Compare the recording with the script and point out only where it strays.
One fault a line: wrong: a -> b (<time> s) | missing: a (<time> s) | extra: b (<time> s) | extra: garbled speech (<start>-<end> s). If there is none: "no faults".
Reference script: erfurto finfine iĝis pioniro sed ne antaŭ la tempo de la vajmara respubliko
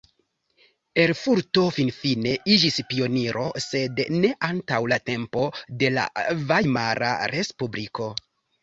no faults